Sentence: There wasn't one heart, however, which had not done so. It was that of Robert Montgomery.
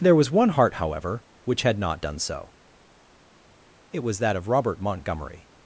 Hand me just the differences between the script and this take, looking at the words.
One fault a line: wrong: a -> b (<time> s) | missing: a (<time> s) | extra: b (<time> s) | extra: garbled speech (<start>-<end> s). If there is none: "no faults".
wrong: wasn't -> was (0.1 s)